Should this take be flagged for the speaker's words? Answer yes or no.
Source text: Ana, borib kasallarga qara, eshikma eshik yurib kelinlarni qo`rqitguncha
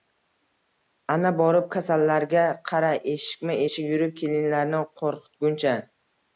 no